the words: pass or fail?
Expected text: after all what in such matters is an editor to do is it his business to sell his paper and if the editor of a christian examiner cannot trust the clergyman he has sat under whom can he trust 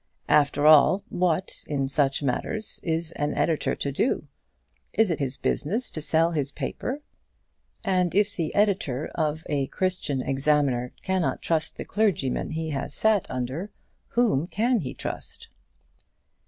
pass